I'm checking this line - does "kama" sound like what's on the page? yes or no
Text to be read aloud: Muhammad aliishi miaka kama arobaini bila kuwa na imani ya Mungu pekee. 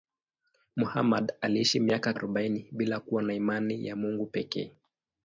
no